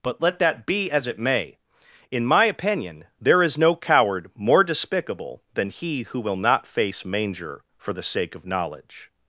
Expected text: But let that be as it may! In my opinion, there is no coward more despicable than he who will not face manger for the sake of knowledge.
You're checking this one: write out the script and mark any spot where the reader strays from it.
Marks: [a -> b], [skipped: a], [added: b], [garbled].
But let that be as it may! In my opinion, there is no coward more despicable than he who will not face manger for the sake of knowledge.